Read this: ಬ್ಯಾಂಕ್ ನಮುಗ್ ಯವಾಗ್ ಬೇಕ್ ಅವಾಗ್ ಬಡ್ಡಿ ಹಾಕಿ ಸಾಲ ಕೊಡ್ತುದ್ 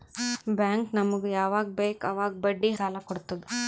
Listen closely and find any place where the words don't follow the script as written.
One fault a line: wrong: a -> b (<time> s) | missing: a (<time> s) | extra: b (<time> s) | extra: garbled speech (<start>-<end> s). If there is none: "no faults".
missing: ಹಾಕಿ (2.7 s)